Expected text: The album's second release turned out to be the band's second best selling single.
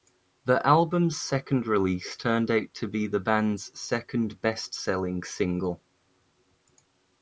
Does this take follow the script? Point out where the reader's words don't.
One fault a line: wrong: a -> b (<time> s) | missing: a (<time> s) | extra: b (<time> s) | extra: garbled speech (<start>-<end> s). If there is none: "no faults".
no faults